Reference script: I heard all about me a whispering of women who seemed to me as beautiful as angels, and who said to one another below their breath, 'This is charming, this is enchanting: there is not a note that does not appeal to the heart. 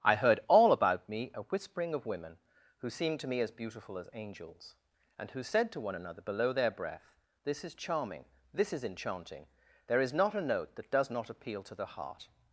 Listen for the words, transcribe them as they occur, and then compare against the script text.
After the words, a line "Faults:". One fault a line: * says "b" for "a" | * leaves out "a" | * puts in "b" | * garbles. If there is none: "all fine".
I heard all about me a whispering of women who seemed to me as beautiful as angels, and who said to one another below their breath, 'This is charming, this is enchanting: there is not a note that does not appeal to the heart.
Faults:
all fine